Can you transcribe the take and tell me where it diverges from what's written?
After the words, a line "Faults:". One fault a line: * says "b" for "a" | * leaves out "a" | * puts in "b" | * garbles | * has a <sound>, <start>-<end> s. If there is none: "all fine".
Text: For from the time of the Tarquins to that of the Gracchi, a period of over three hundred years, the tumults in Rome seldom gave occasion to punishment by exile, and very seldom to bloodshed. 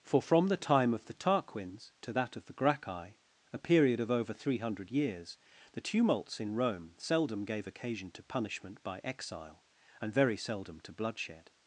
For from the time of the Tarquins to that of the Gracchi, a period of over three hundred years, the tumults in Rome seldom gave occasion to punishment by exile, and very seldom to bloodshed.
Faults:
all fine